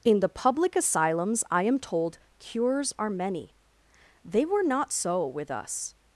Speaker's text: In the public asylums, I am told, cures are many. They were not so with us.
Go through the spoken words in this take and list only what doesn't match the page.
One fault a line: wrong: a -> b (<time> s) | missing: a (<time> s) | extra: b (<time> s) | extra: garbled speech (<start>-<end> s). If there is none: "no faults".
no faults